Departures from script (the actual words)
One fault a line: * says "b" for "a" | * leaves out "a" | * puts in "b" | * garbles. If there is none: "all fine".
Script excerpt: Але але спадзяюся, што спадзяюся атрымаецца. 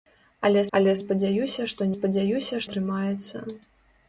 all fine